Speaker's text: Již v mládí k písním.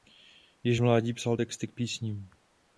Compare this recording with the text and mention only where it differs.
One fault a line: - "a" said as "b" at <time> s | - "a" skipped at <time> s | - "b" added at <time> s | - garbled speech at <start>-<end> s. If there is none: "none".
- "psal texty" added at 1.1 s